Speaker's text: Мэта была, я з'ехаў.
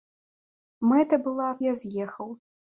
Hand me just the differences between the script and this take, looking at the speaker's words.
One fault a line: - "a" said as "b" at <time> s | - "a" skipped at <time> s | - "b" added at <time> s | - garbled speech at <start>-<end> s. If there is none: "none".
none